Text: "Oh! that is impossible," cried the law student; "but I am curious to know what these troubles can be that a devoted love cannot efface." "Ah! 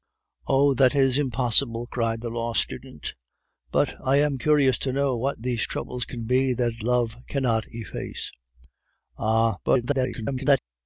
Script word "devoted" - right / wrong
wrong